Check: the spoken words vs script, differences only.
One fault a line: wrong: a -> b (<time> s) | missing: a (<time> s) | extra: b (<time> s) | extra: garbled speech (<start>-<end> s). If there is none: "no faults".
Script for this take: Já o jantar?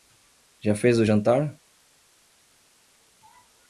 extra: fez (0.7 s)